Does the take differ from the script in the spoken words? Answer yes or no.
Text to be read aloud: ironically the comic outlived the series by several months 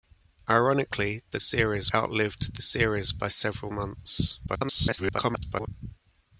yes